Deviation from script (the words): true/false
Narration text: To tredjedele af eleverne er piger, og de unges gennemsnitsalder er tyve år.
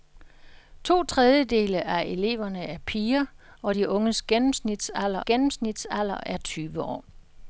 true